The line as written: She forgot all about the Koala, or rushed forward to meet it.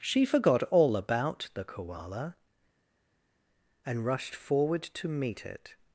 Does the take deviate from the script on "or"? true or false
true